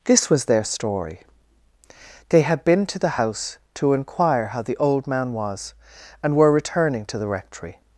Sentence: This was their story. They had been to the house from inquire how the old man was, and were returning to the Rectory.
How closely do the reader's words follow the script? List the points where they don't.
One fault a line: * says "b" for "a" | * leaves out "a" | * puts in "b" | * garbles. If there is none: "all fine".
* says "to" for "from"